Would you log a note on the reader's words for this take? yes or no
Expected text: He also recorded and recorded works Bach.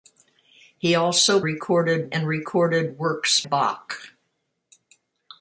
no